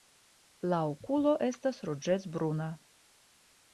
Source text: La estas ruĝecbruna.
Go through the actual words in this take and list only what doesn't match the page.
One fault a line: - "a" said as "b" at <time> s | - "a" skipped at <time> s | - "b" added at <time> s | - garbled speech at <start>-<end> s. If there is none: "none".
- "okulo" added at 0.9 s